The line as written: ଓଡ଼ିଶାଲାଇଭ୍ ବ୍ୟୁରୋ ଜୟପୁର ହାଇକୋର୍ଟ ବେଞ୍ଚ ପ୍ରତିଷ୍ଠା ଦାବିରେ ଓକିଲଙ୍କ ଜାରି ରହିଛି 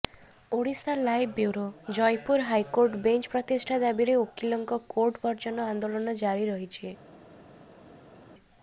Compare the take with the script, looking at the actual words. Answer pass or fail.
fail